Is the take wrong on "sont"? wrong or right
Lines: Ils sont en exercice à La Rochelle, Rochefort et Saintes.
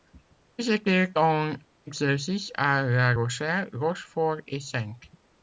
wrong